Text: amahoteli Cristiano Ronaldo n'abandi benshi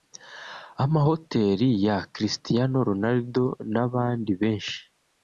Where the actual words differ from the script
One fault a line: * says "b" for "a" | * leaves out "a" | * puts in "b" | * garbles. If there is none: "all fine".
* puts in "ya"